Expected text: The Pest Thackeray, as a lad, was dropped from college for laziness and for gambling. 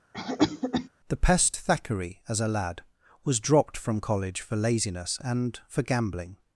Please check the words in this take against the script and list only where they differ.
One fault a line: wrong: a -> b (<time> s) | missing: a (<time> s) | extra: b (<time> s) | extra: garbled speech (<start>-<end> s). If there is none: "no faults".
no faults